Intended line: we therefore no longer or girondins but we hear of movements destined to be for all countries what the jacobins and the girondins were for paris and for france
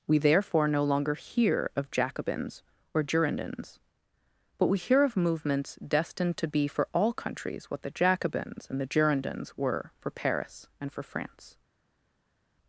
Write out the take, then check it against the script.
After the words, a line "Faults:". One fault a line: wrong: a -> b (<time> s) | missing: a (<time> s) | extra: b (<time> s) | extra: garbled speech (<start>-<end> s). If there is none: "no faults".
we therefore no longer hear of jacobins or girondins but we hear of movements destined to be for all countries what the jacobins and the girondins were for paris and for france
Faults:
extra: hear of jacobins (1.1 s)